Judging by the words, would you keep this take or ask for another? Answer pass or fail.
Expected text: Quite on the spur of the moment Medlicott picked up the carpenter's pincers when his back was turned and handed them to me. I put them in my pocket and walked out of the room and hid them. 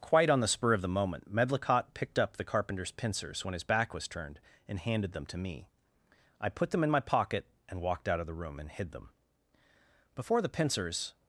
fail